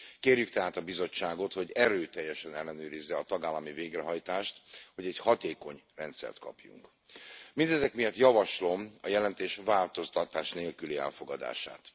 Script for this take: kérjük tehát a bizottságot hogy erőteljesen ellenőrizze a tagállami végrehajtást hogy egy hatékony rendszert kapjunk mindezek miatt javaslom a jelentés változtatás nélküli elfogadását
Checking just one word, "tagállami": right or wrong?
right